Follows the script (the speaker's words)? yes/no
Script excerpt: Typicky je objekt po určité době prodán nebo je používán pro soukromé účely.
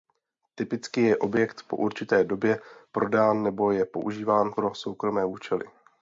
yes